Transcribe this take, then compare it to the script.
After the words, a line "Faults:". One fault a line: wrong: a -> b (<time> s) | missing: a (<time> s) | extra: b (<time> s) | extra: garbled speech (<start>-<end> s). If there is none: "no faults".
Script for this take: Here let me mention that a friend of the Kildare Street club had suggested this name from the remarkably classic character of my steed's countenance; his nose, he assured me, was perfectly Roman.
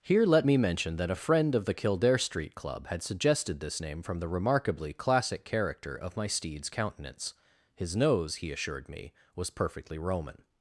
Here let me mention that a friend of the Kildare Street club had suggested this name from the remarkably classic character of my steed's countenance; his nose, he assured me, was perfectly Roman.
Faults:
no faults